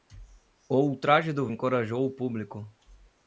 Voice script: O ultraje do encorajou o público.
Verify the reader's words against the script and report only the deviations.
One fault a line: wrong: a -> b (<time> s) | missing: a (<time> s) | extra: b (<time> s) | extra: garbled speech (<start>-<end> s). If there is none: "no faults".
no faults